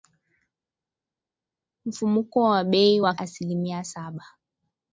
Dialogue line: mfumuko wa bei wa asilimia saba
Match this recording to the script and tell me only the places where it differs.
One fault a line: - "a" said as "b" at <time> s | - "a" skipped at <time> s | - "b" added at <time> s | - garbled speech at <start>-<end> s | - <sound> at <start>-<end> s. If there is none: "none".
none